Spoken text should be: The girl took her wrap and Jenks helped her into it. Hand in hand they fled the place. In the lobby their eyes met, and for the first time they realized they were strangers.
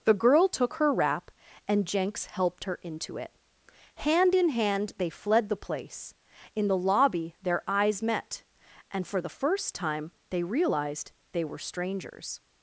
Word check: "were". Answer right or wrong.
right